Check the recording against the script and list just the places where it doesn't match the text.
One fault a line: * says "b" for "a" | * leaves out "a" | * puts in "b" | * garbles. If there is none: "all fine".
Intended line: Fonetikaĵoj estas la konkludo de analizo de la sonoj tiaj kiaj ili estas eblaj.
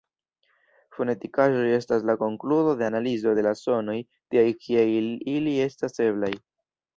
all fine